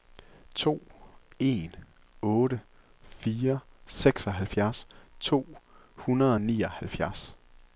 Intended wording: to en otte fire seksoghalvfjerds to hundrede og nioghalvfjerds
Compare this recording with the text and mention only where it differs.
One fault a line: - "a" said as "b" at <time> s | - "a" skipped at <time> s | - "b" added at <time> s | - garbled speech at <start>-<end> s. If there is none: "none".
none